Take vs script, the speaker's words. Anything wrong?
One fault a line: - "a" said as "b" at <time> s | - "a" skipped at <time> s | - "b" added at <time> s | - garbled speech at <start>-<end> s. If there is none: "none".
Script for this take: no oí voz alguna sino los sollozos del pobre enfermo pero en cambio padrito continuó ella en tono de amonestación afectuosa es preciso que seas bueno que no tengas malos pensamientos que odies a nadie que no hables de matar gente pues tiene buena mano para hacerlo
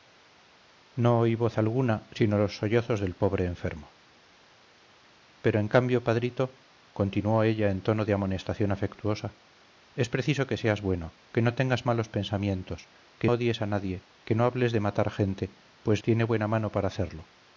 none